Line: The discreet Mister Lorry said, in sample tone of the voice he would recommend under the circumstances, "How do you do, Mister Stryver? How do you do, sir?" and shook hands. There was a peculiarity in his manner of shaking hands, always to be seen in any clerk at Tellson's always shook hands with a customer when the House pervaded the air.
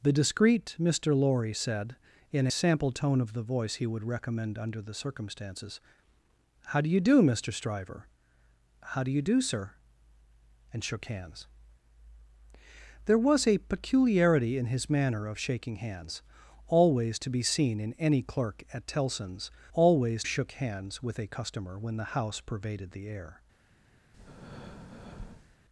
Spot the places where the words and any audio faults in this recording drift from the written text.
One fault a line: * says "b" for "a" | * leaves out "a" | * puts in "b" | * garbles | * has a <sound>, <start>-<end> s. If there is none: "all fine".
* has a breath, 24.1-25.6 s